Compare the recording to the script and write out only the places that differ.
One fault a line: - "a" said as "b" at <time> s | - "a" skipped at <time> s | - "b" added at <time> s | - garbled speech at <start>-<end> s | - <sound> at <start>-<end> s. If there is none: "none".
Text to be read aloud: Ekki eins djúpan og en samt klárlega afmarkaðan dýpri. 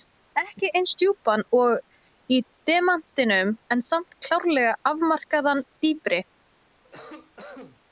- "í demantinum" added at 2.3 s
- cough at 6.8-7.8 s